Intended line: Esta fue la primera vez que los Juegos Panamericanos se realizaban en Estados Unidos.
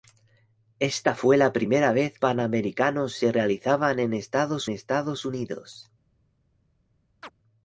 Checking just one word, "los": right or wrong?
wrong